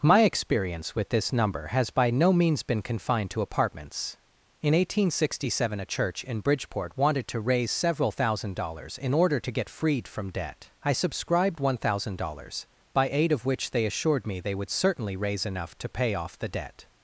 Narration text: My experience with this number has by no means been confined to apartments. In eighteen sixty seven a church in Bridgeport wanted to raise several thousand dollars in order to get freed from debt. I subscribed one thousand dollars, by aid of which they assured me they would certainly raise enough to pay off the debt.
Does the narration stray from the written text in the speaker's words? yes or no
no